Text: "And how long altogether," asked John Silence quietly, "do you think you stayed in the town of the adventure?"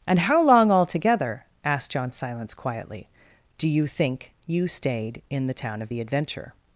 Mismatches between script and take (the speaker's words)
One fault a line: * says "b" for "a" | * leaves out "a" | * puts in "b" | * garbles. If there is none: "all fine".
all fine